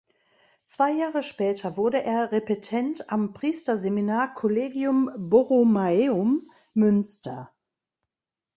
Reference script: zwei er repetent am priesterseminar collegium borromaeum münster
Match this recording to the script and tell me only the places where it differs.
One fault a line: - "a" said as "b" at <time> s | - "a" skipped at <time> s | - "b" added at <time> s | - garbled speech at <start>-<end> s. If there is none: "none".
- "jahre später wurde" added at 0.9 s